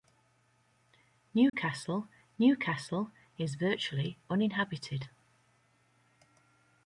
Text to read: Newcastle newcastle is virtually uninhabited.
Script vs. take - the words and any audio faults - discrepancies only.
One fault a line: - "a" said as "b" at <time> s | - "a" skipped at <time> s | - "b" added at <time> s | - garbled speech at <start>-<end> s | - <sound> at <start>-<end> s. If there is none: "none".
- dropout at 1.5-1.5 s